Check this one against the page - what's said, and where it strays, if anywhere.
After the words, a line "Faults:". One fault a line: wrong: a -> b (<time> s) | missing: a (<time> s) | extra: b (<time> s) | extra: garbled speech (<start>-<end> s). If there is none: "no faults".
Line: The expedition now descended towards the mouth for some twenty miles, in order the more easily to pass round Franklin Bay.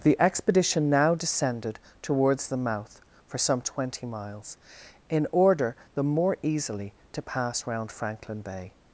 The expedition now descended towards the mouth for some twenty miles, in order the more easily to pass round Franklin Bay.
Faults:
no faults